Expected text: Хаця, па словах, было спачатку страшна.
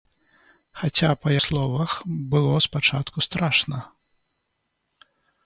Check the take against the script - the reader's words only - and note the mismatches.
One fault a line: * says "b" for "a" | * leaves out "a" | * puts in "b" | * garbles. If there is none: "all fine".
all fine